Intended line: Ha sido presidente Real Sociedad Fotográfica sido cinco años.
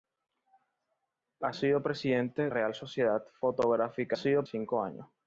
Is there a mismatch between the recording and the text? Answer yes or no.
no